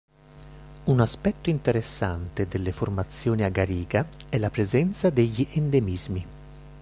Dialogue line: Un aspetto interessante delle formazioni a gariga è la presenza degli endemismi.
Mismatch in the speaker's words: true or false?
false